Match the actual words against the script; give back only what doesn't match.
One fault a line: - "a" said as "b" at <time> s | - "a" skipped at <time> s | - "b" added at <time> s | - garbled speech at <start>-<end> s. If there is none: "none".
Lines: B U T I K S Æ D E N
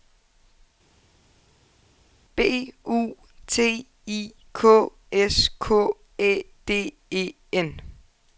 - "K" added at 5.6 s